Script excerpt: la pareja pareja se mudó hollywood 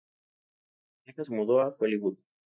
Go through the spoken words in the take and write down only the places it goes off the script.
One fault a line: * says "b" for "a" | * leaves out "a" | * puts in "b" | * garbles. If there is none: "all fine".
* leaves out "pareja"
* puts in "a"